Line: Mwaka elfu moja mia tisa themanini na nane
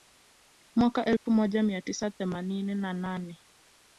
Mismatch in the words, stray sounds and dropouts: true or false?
true